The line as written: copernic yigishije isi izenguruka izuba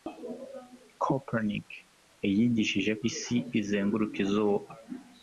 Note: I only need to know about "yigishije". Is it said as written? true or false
true